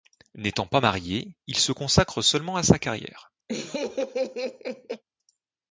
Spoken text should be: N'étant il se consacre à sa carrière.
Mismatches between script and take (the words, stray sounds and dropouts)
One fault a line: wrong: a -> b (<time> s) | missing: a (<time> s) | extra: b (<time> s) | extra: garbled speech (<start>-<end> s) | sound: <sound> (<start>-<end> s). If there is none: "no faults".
extra: pas marié (0.7 s)
extra: seulement (2.2 s)
sound: laugh (3.5-5.0 s)